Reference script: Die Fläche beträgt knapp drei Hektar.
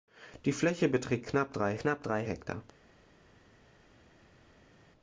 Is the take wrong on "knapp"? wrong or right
right